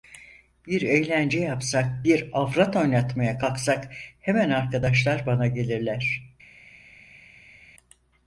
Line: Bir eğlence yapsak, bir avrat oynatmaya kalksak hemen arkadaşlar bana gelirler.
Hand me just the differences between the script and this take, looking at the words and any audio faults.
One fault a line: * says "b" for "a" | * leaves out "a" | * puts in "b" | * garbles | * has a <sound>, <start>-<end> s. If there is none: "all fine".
all fine